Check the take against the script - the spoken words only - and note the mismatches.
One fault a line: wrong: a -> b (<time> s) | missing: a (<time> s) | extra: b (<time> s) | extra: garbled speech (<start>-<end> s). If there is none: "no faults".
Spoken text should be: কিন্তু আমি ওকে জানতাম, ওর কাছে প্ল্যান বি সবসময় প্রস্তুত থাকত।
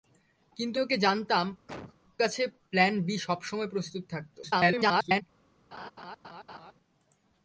missing: আমি (0.8 s)
missing: ওর (1.5 s)
extra: garbled speech (4.4-5.2 s)